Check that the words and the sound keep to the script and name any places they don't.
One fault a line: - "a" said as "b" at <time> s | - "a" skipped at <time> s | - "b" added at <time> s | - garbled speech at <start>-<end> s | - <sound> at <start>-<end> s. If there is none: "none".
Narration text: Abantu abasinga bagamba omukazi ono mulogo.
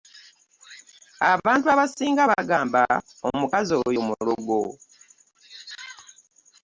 - "ono" said as "oyo" at 3.9 s